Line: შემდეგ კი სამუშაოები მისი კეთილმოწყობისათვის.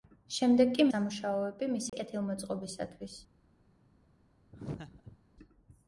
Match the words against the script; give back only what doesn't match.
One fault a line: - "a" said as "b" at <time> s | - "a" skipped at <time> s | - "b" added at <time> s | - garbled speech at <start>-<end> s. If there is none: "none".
none